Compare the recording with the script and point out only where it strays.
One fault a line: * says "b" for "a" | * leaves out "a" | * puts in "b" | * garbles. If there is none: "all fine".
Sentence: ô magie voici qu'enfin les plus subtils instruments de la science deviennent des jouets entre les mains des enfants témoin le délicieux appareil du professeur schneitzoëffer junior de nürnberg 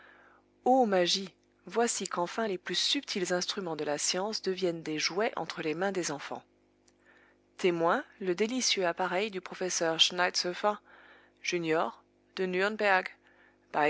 all fine